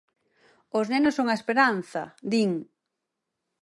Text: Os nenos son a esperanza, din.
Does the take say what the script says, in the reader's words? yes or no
yes